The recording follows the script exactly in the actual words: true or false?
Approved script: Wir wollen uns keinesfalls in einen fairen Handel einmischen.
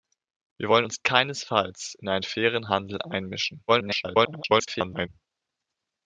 false